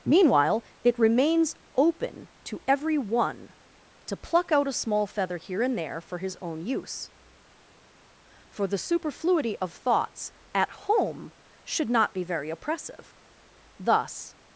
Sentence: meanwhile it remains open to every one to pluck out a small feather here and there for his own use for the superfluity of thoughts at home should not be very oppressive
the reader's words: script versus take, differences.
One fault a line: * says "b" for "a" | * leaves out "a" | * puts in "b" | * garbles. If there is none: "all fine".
* puts in "thus"